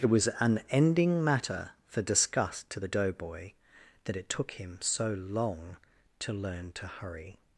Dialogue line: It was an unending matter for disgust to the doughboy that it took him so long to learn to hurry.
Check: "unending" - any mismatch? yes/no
yes